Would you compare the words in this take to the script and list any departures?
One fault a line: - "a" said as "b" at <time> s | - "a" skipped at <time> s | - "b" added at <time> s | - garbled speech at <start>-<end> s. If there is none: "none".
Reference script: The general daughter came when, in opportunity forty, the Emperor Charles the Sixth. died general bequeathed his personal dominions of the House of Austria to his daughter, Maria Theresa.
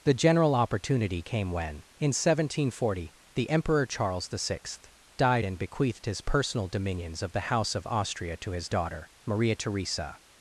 - "daughter" said as "opportunity" at 0.6 s
- "opportunity" said as "seventeen" at 2.1 s
- "general" said as "and" at 5.4 s